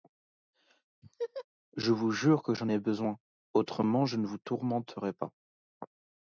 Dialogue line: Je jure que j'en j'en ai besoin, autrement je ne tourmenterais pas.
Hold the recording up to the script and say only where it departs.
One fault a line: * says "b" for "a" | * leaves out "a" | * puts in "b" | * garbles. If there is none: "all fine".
* puts in "vous"
* leaves out "j'en"
* puts in "vous"